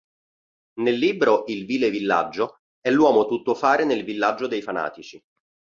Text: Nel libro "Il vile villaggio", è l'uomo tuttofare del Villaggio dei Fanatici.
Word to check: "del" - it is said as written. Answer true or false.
false